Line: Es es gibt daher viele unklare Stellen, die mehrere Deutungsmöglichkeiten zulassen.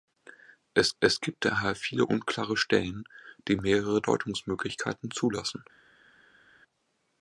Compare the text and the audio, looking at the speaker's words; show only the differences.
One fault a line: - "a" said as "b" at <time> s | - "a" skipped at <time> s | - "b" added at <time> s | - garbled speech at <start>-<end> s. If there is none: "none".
none